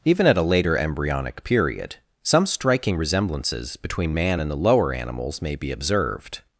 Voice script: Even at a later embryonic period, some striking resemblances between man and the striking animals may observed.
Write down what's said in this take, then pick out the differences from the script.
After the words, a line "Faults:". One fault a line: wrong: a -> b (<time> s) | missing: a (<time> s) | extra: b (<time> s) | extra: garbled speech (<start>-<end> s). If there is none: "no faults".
Even at a later embryonic period, some striking resemblances between man and the lower animals may be observed.
Faults:
wrong: striking -> lower (4.6 s)
extra: be (5.6 s)